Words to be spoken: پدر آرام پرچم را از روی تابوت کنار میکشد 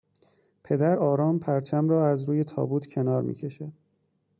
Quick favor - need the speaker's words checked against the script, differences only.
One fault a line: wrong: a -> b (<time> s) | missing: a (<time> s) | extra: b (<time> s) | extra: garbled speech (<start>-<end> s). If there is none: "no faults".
no faults